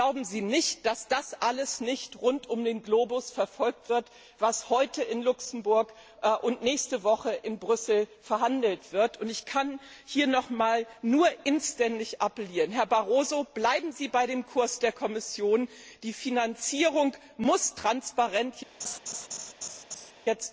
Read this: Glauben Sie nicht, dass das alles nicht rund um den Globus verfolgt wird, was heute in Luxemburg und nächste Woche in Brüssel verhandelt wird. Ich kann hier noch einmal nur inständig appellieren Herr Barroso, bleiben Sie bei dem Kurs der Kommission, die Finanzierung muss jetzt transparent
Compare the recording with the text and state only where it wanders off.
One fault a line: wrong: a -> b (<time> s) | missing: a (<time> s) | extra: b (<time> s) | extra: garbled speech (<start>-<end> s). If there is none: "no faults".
no faults